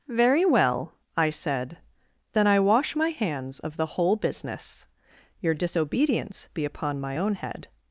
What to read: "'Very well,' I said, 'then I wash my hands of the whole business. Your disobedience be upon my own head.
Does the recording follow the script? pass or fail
pass